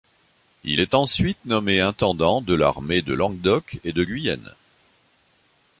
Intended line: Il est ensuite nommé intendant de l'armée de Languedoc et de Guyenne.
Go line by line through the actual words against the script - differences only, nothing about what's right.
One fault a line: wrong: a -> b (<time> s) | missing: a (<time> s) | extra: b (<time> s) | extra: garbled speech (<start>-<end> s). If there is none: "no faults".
no faults